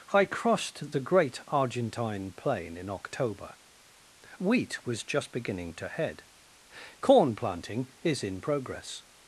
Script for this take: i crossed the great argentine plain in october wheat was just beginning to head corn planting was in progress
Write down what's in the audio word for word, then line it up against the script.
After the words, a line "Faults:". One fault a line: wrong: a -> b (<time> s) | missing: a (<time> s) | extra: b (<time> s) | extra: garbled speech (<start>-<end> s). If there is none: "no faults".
i crossed the great argentine plain in october wheat was just beginning to head corn planting is in progress
Faults:
wrong: was -> is (8.0 s)